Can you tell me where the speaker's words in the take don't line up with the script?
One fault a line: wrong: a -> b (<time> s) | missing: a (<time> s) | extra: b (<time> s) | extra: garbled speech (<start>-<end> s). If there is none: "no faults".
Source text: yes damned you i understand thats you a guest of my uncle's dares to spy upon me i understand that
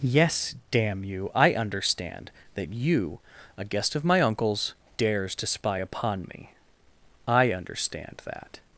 wrong: damned -> damn (0.7 s)
wrong: thats -> that (2.5 s)